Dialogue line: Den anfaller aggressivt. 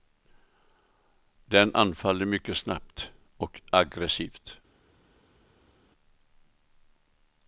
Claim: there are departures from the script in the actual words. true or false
true